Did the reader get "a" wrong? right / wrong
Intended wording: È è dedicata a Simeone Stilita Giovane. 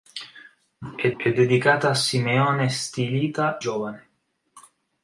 right